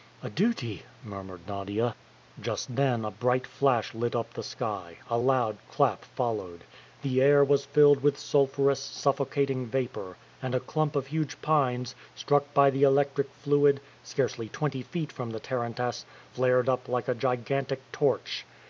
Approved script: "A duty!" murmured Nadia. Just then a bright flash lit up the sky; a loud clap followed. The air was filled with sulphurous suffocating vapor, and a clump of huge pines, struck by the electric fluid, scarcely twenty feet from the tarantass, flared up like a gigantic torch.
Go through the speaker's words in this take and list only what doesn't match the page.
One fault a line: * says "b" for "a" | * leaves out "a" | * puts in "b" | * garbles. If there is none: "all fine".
all fine